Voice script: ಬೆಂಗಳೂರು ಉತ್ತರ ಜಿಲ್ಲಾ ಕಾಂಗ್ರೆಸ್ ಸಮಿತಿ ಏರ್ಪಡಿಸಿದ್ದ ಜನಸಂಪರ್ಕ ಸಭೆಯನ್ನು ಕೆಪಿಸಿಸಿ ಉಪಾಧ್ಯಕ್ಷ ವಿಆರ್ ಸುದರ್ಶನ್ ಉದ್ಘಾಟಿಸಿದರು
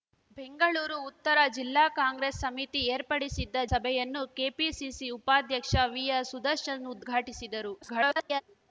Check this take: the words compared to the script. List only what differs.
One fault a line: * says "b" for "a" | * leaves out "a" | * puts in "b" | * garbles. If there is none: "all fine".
* leaves out "ಜನಸಂಪರ್ಕ"
* garbles